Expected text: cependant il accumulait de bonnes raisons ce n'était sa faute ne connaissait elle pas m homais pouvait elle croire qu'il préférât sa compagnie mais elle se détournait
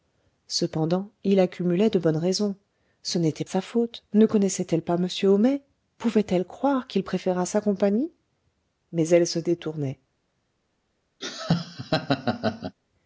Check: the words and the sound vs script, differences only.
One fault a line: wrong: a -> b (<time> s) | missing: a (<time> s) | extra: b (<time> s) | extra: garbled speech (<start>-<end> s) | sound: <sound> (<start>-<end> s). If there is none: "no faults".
sound: laugh (11.2-12.8 s)